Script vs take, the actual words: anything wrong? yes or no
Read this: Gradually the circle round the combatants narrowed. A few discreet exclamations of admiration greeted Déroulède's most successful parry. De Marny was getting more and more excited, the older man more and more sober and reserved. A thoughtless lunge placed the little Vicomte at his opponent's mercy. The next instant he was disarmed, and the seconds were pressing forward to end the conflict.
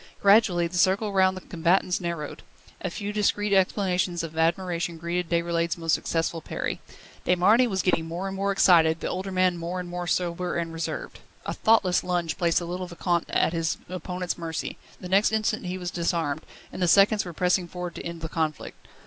no